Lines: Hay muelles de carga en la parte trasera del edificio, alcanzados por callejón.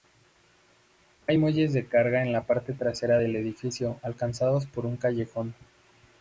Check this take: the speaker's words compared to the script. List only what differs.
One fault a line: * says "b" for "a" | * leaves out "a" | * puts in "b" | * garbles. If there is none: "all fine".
* puts in "un"